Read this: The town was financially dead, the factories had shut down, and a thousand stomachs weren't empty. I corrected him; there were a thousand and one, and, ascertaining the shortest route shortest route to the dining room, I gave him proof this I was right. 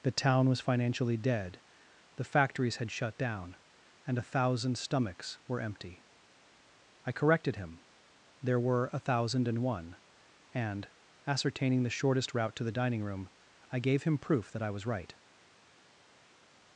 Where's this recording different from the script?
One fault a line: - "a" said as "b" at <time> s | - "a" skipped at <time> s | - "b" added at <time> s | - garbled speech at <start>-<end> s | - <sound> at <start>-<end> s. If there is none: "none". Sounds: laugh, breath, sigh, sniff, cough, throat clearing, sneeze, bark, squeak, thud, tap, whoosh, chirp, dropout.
- "weren't" said as "were" at 5.5 s
- "shortest route" skipped at 12.6 s
- "this" said as "that" at 14.5 s